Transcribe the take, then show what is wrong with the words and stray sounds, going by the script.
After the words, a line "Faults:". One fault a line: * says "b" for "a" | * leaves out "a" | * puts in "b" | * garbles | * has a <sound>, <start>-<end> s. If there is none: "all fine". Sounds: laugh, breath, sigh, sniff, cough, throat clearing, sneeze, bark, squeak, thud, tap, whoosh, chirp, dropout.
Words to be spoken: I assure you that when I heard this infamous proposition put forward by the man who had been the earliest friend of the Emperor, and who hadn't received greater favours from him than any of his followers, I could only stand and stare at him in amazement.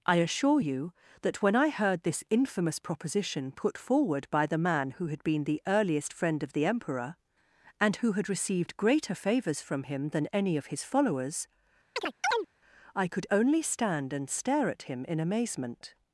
I assure you that when I heard this infamous proposition put forward by the man who had been the earliest friend of the Emperor, and who had received greater favours from him than any of his followers, I could only stand and stare at him in amazement.
Faults:
* says "had" for "hadn't"
* has a chirp, 12.0-12.5 s